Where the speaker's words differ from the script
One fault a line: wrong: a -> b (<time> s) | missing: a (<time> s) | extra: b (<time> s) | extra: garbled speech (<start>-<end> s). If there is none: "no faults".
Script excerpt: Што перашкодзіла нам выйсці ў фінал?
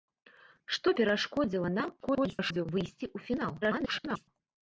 extra: garbled speech (2.0-2.7 s)
extra: garbled speech (3.6-4.3 s)